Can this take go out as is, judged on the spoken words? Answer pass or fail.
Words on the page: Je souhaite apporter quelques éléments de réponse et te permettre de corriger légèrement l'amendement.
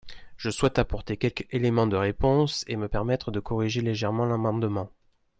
fail